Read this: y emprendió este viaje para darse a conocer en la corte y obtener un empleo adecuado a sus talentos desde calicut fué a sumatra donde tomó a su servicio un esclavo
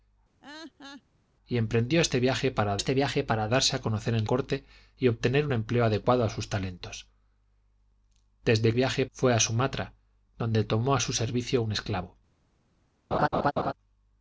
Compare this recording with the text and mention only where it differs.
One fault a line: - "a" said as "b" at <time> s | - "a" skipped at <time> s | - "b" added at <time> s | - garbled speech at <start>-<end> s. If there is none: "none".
- "este viaje para" added at 2.8 s
- "la" skipped at 4.3 s
- "calicut" said as "viaje" at 8.7 s